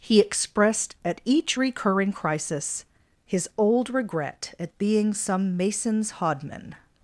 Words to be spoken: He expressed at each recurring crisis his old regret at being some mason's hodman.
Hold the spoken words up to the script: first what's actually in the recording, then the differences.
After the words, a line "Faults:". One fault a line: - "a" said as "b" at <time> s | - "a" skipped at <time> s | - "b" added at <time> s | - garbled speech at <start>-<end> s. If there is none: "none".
He expressed at each recurring crisis his old regret at being some mason's hodman.
Faults:
none